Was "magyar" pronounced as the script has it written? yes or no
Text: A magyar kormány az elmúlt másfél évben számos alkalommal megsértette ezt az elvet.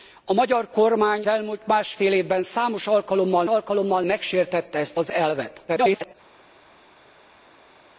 yes